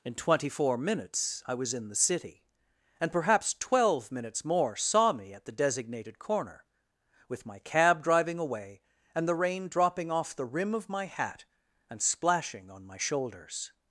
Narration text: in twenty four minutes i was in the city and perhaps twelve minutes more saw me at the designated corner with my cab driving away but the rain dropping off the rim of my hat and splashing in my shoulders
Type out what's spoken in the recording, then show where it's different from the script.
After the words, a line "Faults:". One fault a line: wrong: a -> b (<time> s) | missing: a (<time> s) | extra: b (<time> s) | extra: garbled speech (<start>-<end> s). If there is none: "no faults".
in twenty four minutes i was in the city and perhaps twelve minutes more saw me at the designated corner with my cab driving away and the rain dropping off the rim of my hat and splashing on my shoulders
Faults:
wrong: but -> and (9.1 s)
wrong: in -> on (12.7 s)